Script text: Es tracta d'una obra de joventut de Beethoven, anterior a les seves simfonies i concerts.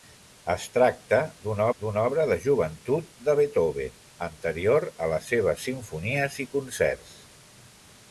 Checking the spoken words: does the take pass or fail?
fail